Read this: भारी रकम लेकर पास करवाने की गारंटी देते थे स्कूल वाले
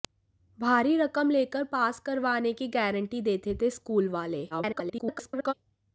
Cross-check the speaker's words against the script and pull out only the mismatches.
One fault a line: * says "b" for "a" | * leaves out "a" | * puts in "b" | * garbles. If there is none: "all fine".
* garbles